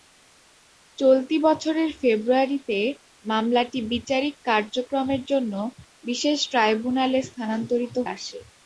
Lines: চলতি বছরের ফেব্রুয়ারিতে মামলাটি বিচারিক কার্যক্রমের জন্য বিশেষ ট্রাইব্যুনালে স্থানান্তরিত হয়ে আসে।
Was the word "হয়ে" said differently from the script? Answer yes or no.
yes